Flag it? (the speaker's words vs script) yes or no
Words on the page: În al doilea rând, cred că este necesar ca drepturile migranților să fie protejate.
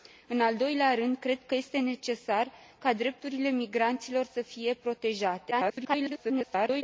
yes